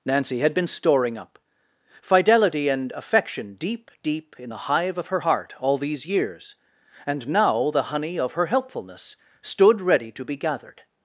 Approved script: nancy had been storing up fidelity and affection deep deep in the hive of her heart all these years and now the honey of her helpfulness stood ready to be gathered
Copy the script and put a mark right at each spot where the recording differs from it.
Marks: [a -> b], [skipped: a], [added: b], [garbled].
nancy had been storing up fidelity and affection deep deep in the hive of her heart all these years and now the honey of her helpfulness stood ready to be gathered